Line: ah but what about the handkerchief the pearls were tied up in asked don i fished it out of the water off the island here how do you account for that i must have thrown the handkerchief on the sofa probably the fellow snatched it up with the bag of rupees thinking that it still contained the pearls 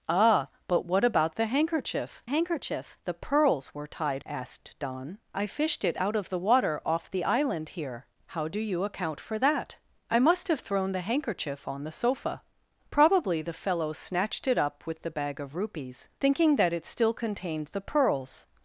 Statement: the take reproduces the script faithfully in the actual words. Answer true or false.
false